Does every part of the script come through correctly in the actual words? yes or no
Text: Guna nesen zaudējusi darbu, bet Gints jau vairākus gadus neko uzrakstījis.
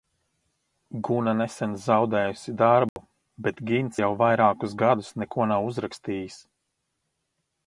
no